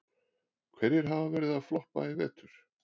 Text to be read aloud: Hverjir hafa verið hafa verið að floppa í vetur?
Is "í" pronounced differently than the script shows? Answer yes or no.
no